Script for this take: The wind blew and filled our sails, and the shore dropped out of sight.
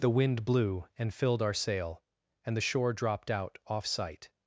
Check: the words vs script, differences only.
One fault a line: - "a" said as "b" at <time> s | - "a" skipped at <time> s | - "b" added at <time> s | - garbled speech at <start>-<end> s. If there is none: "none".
- "sails" said as "sail" at 1.5 s
- "of" said as "off" at 3.7 s